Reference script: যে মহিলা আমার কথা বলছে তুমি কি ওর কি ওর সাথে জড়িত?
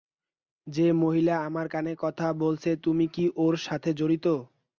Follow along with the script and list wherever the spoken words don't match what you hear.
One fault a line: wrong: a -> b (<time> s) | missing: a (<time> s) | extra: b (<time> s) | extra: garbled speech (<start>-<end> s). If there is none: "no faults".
extra: কানে (1.7 s)
missing: কি ওর (3.5 s)